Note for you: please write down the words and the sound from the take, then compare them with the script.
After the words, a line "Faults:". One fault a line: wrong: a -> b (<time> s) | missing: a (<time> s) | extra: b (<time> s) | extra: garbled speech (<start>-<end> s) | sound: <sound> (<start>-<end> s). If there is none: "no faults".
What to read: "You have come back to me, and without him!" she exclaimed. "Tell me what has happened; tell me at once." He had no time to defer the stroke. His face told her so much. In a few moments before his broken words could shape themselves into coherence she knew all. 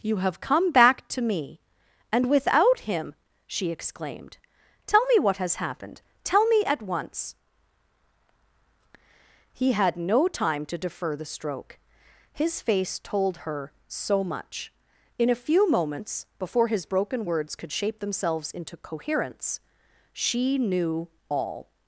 "You have come back to me, and without him!" she exclaimed. "Tell me what has happened; tell me at once." He had no time to defer the stroke. His face told her so much. In a few moments before his broken words could shape themselves into coherence she knew all.
Faults:
no faults